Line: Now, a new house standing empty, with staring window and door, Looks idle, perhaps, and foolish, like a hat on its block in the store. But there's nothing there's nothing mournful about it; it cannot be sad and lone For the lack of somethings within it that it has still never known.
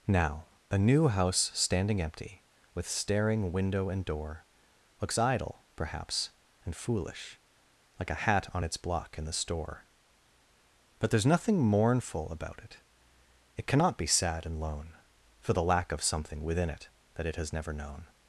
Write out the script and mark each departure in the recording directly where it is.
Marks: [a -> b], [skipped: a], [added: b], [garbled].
Now, a new house standing empty, with staring window and door, Looks idle, perhaps, and foolish, like a hat on its block in the store. But there's nothing [skipped: there's nothing] mournful about it; it cannot be sad and lone For the lack of [somethings -> something] within it that it has [skipped: still] never known.